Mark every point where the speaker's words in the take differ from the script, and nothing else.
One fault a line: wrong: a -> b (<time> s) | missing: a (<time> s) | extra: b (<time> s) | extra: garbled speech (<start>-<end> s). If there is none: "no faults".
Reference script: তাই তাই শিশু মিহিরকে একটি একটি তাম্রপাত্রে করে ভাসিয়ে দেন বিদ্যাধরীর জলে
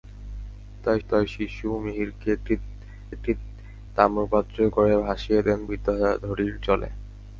no faults